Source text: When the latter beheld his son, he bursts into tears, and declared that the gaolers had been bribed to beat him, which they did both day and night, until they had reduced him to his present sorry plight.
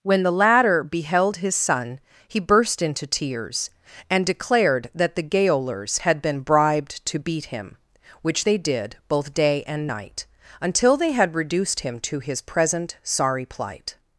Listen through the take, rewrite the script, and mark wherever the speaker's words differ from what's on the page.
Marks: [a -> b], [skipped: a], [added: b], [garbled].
When the latter beheld his son, he [bursts -> burst] into tears, and declared that the gaolers had been bribed to beat him, which they did both day and night, until they had reduced him to his present sorry plight.